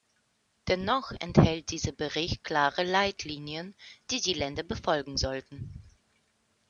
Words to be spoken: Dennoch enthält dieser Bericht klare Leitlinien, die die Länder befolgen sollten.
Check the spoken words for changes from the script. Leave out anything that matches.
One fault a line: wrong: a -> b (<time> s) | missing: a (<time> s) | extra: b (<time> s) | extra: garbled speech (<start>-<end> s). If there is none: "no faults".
no faults